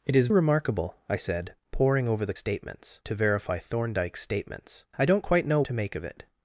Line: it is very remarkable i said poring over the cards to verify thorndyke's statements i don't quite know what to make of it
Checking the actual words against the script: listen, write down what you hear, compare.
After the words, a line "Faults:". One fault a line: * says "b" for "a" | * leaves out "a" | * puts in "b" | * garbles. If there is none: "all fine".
it is remarkable i said poring over the statements to verify thorndyke's statements i don't quite know to make of it
Faults:
* leaves out "very"
* says "statements" for "cards"
* leaves out "what"